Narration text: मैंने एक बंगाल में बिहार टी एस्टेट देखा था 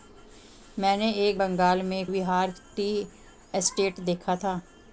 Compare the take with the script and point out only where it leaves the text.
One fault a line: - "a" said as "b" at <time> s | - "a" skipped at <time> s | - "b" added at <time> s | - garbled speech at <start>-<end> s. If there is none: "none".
none